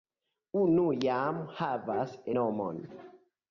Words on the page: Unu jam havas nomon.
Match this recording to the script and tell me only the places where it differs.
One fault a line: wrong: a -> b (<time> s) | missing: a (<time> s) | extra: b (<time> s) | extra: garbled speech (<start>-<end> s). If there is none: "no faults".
no faults